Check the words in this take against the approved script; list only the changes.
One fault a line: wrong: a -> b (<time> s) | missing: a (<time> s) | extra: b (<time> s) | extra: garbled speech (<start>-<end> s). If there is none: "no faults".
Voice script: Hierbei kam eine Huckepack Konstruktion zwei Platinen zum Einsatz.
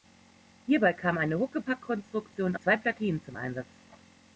no faults